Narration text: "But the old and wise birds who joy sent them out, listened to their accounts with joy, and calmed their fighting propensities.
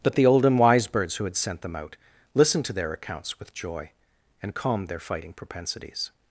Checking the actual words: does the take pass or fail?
fail